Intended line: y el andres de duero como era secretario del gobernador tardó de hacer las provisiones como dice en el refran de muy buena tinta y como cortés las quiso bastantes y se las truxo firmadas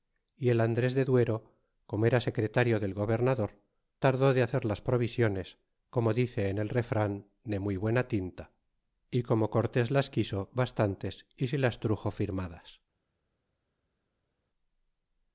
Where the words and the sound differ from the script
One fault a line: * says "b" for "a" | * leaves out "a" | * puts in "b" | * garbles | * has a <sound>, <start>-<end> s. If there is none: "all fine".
all fine